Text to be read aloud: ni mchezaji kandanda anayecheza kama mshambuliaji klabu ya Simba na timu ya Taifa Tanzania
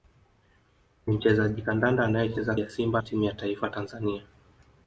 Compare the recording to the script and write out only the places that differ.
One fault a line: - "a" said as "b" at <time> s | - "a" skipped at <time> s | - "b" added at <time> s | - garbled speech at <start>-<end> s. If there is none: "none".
- "kama mshambuliaji klabu" skipped at 2.5 s
- "na" skipped at 3.0 s